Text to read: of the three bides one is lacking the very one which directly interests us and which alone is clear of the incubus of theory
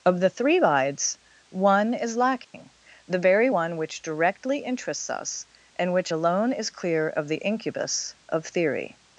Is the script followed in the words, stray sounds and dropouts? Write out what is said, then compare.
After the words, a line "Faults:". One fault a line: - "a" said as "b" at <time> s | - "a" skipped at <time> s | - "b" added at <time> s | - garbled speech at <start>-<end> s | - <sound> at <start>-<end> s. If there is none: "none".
of the three bides one is lacking the very one which directly interests us and which alone is clear of the incubus of theory
Faults:
- dropout at 2.4-2.5 s